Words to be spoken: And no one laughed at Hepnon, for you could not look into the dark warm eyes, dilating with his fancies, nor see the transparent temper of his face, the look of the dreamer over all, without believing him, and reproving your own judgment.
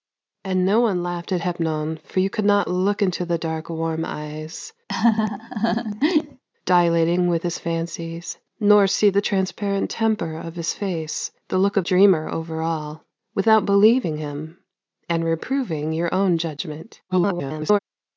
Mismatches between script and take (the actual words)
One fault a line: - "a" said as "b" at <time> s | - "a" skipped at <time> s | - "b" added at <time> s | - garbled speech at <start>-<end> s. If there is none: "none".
- "the" skipped at 11.9 s
- garbled speech at 17.1-17.8 s